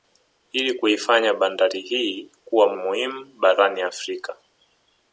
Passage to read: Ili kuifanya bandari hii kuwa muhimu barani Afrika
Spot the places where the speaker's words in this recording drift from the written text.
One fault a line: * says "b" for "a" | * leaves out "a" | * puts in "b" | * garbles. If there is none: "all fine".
all fine